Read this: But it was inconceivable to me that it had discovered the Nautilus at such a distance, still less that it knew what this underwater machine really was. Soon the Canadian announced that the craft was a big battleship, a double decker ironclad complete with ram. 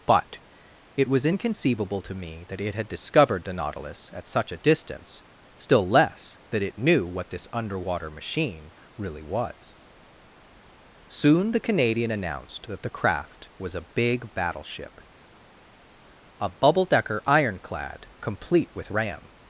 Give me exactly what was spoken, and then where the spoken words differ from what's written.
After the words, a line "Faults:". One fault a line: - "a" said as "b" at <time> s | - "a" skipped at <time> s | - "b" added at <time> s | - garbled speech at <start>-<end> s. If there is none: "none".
But it was inconceivable to me that it had discovered the Nautilus at such a distance, still less that it knew what this underwater machine really was. Soon the Canadian announced that the craft was a big battleship, a bubble decker ironclad complete with ram.
Faults:
- "double" said as "bubble" at 16.5 s